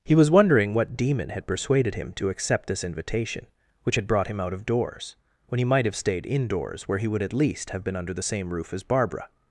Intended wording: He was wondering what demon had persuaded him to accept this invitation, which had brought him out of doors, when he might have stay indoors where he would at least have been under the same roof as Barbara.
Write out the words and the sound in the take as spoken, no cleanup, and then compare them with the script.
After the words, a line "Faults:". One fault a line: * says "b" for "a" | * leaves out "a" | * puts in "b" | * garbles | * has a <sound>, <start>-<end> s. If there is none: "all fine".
He was wondering what demon had persuaded him to accept this invitation, which had brought him out of doors, when he might have stayed indoors where he would at least have been under the same roof as Barbara.
Faults:
* says "stayed" for "stay"